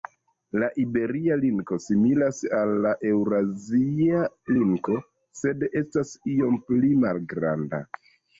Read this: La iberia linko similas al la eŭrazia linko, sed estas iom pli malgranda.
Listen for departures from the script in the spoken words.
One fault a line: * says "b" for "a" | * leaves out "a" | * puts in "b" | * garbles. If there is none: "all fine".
all fine